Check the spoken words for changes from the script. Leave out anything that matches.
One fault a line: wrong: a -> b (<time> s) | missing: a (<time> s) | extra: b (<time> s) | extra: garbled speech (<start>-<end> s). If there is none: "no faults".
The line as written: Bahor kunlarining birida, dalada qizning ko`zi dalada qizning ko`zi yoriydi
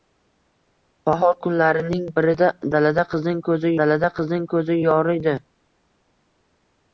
no faults